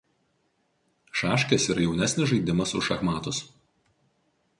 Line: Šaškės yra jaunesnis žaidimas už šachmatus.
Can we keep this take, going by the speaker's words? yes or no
yes